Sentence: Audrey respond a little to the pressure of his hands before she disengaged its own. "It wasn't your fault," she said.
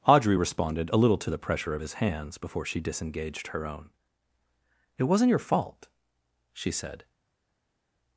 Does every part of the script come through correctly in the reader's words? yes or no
no